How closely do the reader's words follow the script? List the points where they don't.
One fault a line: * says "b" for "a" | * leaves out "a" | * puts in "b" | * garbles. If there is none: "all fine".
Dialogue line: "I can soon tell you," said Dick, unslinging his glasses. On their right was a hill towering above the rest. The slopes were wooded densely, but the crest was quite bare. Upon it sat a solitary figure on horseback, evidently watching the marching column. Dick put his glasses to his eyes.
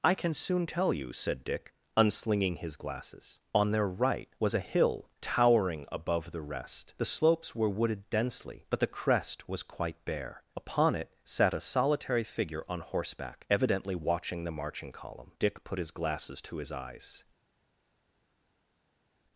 all fine